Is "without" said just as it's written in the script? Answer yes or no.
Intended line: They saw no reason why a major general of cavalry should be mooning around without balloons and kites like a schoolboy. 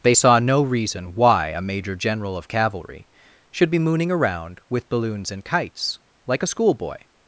no